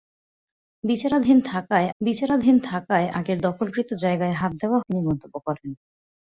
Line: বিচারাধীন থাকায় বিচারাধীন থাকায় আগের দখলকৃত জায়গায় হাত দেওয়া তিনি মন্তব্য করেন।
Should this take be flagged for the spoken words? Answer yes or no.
no